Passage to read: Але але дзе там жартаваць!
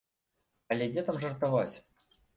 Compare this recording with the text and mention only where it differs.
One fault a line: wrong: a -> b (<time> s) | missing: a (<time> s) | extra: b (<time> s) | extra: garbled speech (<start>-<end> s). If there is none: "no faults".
missing: але (0.9 s)